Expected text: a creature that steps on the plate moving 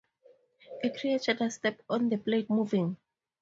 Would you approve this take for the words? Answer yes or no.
yes